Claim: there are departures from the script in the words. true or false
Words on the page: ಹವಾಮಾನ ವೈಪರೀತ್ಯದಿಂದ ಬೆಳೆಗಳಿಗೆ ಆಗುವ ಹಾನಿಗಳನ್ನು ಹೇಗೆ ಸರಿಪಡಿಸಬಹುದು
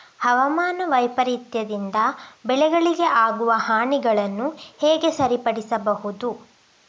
false